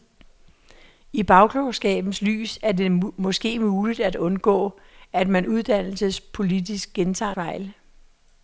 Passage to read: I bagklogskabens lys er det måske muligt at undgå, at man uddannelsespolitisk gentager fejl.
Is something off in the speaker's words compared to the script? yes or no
no